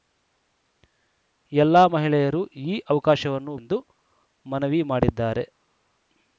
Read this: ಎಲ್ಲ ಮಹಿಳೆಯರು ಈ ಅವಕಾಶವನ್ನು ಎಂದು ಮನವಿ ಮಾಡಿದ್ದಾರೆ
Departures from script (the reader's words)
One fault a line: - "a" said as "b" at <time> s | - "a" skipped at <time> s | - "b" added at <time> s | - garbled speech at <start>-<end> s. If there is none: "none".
none